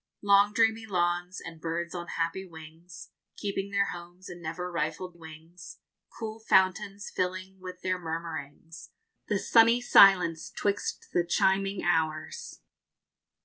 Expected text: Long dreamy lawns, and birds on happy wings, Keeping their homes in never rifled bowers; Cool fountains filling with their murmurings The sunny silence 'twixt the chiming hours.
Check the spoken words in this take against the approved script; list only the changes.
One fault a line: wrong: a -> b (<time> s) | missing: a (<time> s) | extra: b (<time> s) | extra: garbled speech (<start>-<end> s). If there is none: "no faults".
wrong: bowers -> wings (5.1 s)